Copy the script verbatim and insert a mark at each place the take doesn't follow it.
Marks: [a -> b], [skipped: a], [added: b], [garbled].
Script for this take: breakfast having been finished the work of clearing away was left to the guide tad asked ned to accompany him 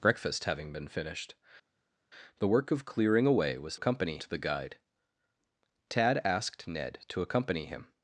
breakfast having been finished the work of clearing away was [left -> accompany] to the guide tad asked ned to accompany him